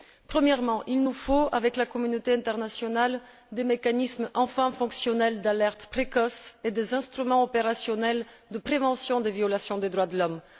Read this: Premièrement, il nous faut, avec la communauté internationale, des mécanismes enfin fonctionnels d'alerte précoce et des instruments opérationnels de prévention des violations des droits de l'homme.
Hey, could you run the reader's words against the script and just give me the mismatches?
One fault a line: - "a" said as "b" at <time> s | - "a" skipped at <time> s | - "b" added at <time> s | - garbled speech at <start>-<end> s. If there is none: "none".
none